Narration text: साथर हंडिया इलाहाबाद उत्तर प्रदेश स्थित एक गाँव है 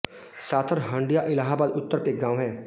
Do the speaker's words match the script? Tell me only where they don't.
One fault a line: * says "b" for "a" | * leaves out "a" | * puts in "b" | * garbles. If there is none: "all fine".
* leaves out "प्रदेश स्थित"